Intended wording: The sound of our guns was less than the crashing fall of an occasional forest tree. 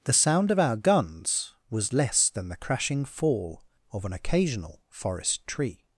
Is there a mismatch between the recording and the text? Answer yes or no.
no